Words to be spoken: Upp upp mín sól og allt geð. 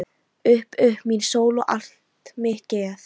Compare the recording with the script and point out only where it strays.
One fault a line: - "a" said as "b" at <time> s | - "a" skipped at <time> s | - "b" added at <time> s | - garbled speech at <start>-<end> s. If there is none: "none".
- "mitt" added at 2.4 s